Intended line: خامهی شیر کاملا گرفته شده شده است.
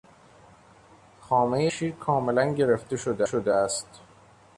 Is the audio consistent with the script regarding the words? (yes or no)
yes